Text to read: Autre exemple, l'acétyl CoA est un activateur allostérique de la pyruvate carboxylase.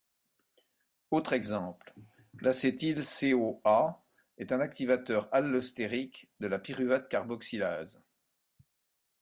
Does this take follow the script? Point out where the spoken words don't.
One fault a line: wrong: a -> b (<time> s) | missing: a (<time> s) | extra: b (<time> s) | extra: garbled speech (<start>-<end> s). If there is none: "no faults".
no faults